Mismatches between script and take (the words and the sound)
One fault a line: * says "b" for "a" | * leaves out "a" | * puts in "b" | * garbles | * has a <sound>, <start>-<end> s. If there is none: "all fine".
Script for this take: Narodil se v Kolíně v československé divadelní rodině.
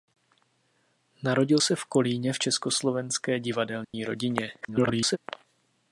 * has a dropout, 3.8-3.9 s
* garbles